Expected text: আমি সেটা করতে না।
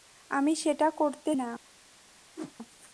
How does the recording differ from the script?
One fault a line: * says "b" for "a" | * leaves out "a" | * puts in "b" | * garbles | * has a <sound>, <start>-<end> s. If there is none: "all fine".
* has a whoosh, 2.4-2.5 s